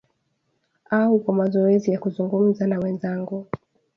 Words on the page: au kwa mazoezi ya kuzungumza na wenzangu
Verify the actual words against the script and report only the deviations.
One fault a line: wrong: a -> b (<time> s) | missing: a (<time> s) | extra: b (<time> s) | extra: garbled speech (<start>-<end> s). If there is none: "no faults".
no faults